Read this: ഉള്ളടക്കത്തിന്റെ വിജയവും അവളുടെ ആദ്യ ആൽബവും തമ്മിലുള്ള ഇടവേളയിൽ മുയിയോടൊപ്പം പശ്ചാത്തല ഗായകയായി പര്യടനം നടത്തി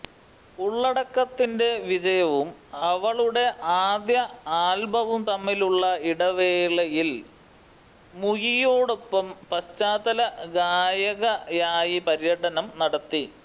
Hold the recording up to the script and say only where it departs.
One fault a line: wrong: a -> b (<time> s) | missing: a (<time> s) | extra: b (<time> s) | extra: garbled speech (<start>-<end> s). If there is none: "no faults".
no faults